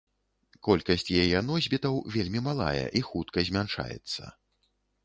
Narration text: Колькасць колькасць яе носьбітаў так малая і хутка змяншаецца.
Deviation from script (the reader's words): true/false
true